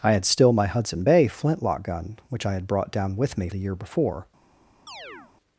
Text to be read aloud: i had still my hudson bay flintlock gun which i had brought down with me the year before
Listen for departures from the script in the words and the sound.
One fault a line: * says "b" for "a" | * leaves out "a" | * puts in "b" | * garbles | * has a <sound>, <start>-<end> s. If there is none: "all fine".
* has a chirp, 4.9-5.3 s